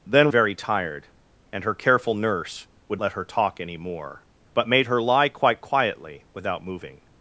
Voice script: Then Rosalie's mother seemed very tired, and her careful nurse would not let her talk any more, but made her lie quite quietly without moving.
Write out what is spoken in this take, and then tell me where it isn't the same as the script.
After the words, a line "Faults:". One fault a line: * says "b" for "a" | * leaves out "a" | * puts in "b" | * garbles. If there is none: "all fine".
Then Very tired, and her careful nurse would let her talk any more, but made her lie quite quietly without moving.
Faults:
* leaves out "Rosalie's mother seemed"
* leaves out "not"